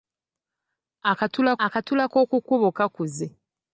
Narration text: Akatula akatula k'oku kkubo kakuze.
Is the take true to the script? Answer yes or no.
yes